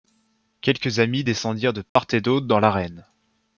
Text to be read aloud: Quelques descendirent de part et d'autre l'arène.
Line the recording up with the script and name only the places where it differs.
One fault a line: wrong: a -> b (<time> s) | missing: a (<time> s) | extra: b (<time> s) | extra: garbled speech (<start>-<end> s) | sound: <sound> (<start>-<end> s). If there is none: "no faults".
extra: amis (1.0 s)
sound: dropout (1.9-2.0 s)
extra: dans (2.5 s)